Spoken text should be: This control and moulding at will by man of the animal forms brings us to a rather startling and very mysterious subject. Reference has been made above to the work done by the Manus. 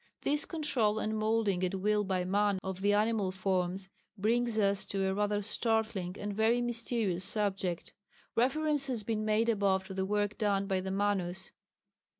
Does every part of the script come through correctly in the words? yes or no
yes